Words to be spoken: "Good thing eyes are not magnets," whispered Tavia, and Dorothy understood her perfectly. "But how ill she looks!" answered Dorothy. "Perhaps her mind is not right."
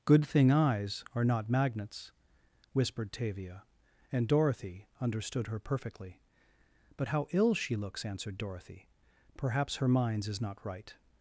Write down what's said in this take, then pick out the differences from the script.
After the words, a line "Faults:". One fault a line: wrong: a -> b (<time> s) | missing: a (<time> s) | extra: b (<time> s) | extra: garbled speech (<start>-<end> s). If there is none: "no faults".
"Good thing eyes are not magnets," whispered Tavia, and Dorothy understood her perfectly. "But how ill she looks!" answered Dorothy. "Perhaps her minds is not right."
Faults:
wrong: mind -> minds (9.9 s)